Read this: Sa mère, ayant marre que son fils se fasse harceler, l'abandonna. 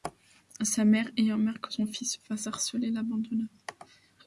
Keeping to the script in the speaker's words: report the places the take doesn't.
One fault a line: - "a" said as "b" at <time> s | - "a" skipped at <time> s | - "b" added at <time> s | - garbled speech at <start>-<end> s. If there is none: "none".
none